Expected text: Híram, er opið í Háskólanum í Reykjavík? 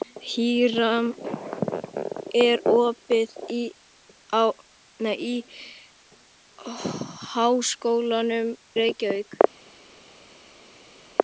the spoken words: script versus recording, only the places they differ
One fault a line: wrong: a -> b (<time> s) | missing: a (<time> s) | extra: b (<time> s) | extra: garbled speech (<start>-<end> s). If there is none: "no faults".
missing: í (8.5 s)